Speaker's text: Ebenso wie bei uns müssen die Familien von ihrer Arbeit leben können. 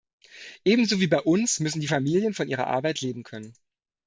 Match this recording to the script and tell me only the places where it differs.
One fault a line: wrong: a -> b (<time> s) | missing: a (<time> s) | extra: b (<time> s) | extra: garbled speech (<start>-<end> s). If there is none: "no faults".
no faults